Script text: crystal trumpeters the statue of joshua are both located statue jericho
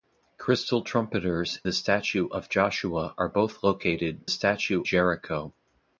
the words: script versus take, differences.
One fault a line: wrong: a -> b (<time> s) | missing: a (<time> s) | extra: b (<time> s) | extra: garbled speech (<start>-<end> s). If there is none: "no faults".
no faults